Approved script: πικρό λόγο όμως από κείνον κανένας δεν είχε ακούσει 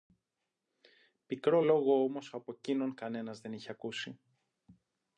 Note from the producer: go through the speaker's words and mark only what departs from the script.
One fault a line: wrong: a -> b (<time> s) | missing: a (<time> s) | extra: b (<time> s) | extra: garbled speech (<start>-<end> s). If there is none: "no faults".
no faults